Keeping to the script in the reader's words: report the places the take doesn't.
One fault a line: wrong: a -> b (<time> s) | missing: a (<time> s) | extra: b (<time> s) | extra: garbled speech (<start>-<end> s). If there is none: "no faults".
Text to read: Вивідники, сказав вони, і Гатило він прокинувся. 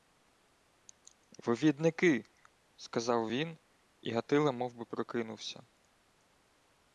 wrong: вони -> він (3.3 s)
wrong: він -> мовби (4.5 s)